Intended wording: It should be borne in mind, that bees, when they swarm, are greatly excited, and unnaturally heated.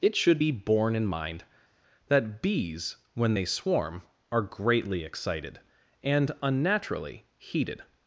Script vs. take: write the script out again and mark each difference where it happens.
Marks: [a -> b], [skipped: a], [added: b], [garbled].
It should be borne in mind, that bees, when they swarm, are greatly excited, and unnaturally heated.